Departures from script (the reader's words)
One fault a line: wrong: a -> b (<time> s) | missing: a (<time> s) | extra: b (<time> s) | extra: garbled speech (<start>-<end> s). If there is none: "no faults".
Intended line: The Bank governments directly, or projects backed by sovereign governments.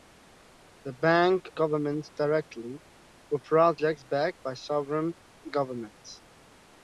no faults